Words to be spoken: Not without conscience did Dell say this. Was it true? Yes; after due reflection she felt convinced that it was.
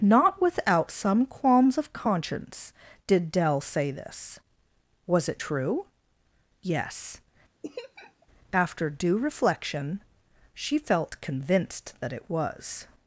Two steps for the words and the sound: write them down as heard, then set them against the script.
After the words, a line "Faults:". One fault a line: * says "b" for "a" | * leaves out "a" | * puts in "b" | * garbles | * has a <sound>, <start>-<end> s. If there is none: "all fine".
Not without some qualms of conscience did Dell say this. Was it true? Yes; after due reflection she felt convinced that it was.
Faults:
* puts in "some qualms of"
* has a laugh, 7.6-8.3 s